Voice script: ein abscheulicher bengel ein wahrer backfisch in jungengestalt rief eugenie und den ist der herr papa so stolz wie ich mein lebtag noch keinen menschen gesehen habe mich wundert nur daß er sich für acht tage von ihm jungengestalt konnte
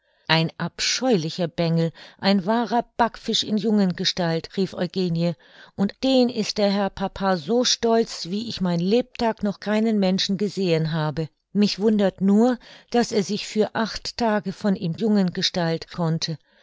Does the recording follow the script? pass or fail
pass